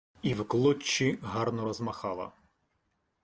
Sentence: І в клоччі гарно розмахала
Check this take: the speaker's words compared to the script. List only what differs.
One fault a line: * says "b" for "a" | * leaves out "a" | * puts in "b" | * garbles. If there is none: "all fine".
all fine